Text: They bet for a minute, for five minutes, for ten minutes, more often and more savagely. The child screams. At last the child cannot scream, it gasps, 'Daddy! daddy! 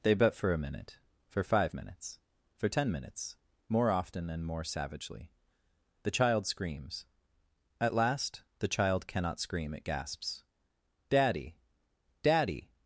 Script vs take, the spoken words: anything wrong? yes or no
no